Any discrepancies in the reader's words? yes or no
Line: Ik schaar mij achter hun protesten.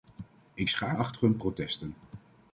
yes